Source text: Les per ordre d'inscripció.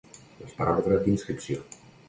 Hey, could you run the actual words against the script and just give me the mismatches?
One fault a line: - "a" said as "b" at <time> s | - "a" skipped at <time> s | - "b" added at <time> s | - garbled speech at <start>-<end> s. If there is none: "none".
none